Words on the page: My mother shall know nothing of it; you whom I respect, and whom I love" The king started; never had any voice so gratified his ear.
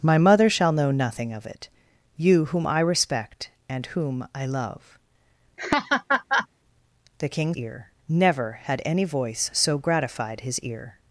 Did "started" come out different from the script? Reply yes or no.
yes